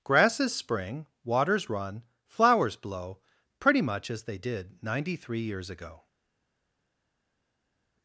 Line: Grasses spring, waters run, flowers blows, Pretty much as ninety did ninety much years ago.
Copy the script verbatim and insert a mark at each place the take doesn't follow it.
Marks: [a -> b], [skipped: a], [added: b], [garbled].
Grasses spring, waters run, flowers [blows, -> blow] Pretty much as [ninety -> they] did ninety [much -> three] years ago.